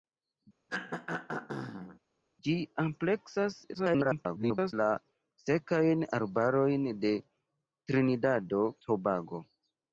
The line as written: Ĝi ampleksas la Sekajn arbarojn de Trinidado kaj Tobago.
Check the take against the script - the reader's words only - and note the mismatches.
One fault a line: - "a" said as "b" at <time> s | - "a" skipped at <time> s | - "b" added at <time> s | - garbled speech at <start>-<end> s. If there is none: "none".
- garbled speech at 3.7-4.7 s
- "kaj" skipped at 8.6 s